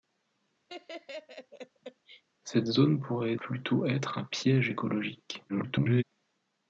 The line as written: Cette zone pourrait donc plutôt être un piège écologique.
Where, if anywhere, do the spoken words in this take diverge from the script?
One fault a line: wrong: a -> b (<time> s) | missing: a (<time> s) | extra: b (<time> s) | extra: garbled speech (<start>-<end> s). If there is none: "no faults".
missing: donc (3.3 s)
extra: garbled speech (5.5-6.0 s)